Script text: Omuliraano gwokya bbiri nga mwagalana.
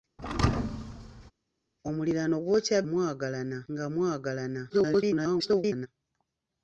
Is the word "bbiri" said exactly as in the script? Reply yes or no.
no